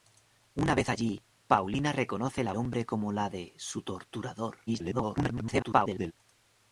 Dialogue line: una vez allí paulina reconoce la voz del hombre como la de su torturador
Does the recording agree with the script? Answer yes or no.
no